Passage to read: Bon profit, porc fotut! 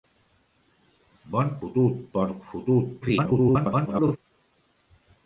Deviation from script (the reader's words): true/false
true